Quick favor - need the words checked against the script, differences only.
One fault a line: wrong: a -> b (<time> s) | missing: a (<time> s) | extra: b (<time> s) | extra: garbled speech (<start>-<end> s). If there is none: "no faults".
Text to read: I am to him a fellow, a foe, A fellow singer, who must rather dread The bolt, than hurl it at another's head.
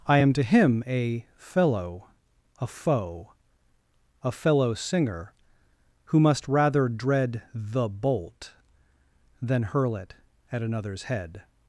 no faults